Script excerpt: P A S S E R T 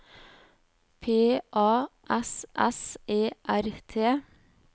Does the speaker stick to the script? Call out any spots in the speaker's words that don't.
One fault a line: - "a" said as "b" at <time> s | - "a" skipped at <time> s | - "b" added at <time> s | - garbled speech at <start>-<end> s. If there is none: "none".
none